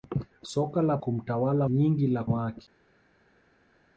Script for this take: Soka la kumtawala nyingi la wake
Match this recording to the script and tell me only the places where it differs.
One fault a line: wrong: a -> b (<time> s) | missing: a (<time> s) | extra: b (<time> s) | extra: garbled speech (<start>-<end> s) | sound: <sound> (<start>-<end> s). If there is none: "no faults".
no faults